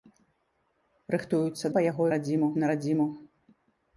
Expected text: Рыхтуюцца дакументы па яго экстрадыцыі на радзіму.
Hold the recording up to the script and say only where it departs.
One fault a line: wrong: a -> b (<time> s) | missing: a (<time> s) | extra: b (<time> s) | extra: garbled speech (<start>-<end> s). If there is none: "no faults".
missing: дакументы (1.6 s)
wrong: экстрадыцыі -> радзіму (2.1 s)